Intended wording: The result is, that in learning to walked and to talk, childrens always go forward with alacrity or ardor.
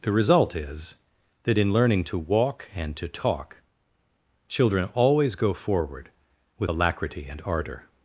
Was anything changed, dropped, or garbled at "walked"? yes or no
yes